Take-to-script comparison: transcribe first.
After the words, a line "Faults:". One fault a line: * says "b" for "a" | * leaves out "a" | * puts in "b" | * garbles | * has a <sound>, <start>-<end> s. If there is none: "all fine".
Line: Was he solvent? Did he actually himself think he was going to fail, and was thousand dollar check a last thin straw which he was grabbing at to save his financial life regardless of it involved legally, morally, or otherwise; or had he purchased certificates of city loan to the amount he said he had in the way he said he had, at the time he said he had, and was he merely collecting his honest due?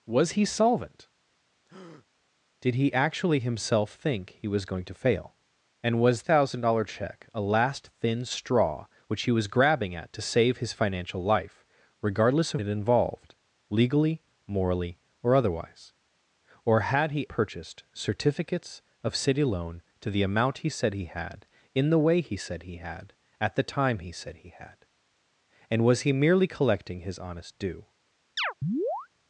Was he solvent? Did he actually himself think he was going to fail, and was thousand dollar check a last thin straw which he was grabbing at to save his financial life regardless of it involved legally, morally, or otherwise; or had he purchased certificates of city loan to the amount he said he had in the way he said he had, at the time he said he had, and was he merely collecting his honest due?
Faults:
* has a breath, 1.7-2.1 s
* has a chirp, 28.4-29.1 s